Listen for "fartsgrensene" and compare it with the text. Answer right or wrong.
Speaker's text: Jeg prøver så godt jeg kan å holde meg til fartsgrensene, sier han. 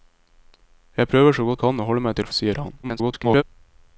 wrong